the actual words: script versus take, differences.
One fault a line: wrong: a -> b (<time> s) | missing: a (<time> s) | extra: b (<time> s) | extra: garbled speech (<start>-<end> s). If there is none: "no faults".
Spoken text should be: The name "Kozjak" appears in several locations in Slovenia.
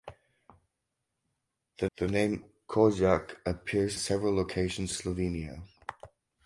extra: the (2.0 s)
missing: in (4.0 s)
missing: in (4.9 s)